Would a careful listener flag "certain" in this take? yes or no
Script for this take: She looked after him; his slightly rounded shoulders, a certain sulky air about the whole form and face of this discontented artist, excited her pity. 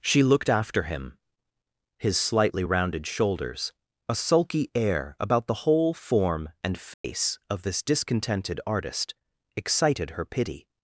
yes